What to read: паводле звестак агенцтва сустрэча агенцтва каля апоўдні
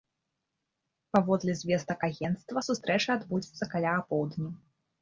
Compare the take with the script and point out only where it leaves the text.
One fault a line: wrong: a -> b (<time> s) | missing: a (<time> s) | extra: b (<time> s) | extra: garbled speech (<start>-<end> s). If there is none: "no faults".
wrong: агенцтва -> адбудзецца (3.2 s)